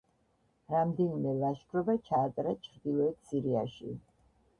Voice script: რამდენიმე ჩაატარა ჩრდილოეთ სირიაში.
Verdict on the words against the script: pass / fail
fail